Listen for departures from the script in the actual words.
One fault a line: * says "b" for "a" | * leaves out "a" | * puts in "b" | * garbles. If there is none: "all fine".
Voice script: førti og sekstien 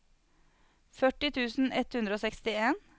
* puts in "tusen ett hundre"